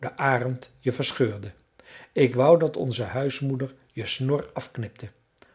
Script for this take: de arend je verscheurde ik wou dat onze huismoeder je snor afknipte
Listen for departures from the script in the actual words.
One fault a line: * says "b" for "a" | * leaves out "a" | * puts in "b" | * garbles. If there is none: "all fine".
all fine